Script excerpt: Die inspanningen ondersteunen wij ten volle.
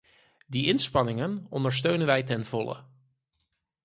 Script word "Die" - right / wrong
right